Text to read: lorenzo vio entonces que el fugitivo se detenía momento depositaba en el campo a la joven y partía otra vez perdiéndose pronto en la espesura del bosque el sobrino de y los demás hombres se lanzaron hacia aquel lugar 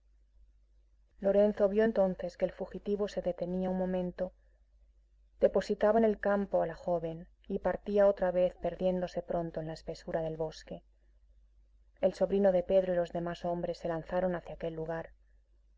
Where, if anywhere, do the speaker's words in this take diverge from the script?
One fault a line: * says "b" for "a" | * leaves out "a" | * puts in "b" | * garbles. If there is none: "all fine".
* puts in "un"
* puts in "pedro"